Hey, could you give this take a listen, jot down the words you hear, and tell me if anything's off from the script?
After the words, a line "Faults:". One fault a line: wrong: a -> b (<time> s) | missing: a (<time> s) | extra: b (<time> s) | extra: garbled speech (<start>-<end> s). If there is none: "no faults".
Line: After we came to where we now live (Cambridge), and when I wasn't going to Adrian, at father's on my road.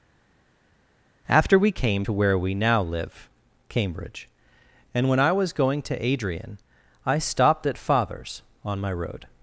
After we came to where we now live (Cambridge), and when I was going to Adrian, I stopped at father's on my road.
Faults:
wrong: wasn't -> was (5.3 s)
extra: I stopped (7.0 s)